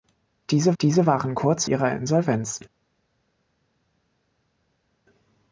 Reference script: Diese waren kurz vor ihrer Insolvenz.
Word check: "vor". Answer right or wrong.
wrong